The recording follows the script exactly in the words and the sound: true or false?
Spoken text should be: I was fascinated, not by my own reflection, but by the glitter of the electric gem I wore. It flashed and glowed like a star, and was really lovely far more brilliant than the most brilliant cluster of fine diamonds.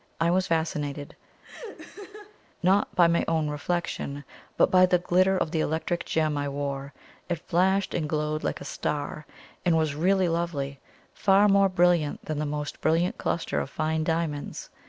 false